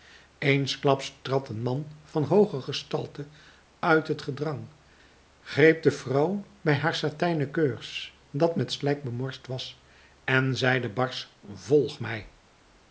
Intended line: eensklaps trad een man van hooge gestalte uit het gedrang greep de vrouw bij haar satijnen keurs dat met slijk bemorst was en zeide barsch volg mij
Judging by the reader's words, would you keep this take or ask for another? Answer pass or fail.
pass